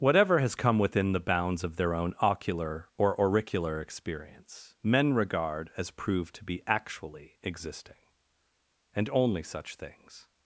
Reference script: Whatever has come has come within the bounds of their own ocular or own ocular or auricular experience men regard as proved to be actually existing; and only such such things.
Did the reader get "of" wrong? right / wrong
right